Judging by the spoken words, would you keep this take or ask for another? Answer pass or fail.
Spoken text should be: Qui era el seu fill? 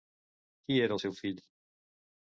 pass